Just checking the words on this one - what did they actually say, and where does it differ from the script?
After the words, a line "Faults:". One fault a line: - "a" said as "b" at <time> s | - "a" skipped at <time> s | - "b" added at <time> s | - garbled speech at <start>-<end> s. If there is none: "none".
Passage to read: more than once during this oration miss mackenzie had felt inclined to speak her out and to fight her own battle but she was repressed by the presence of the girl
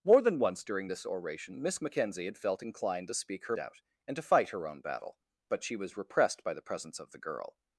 more than once during this oration miss mackenzie had felt inclined to speak her out and to fight her own battle but she was repressed by the presence of the girl
Faults:
none